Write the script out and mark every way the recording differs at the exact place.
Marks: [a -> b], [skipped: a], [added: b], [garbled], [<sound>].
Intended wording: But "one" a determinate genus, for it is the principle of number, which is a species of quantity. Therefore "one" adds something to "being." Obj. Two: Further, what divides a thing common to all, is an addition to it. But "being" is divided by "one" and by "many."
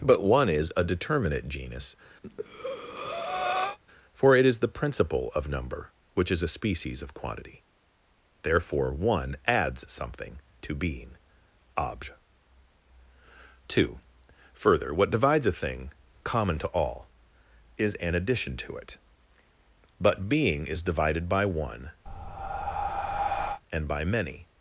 But "one" [added: is] a determinate genus, [breath] for it is the principle of number, which is a species of quantity. Therefore "one" adds something to "being." Obj. Two: Further, what divides a thing common to all, is an addition to it. But "being" is divided by "one" [breath] and by "many."